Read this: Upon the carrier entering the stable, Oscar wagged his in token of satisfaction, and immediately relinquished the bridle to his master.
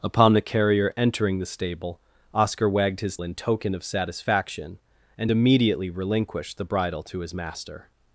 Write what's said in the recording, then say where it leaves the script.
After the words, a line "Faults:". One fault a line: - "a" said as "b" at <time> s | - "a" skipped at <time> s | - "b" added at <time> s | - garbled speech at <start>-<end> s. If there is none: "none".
Upon the carrier entering the stable, Oscar wagged his in token of satisfaction, and immediately relinquished the bridle to his master.
Faults:
none